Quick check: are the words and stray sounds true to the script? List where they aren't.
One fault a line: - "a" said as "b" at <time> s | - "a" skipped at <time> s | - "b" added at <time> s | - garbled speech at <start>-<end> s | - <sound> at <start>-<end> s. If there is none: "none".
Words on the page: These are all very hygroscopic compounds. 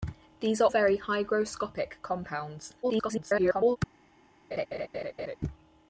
- "all" skipped at 0.7 s
- garbled speech at 2.8-3.8 s
- laugh at 4.5-5.4 s